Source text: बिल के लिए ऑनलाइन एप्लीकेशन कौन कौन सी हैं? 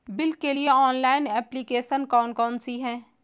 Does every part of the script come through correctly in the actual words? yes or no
yes